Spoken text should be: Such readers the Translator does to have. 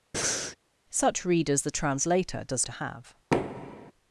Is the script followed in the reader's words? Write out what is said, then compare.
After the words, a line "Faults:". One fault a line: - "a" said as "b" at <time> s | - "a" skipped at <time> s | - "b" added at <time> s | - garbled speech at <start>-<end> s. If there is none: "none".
Such readers the Translator does to have.
Faults:
none